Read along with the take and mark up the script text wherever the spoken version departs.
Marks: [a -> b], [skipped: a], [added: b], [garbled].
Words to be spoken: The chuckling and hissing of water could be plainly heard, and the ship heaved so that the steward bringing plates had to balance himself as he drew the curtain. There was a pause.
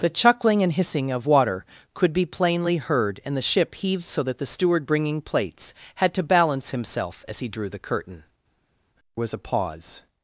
The chuckling and hissing of water could be plainly heard, and the ship heaved so that the steward bringing plates had to balance himself as he drew the curtain. [skipped: There] was a pause.